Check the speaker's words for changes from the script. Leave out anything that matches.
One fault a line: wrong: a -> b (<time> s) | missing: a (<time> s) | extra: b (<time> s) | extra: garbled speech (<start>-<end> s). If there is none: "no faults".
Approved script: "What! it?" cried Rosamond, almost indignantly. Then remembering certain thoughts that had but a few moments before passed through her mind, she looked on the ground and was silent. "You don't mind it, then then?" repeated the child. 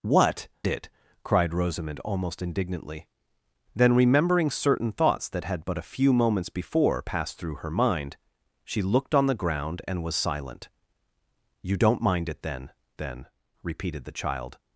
no faults